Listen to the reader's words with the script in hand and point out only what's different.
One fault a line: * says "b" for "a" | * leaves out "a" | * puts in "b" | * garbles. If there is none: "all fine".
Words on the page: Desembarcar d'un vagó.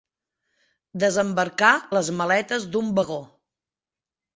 * puts in "les maletes"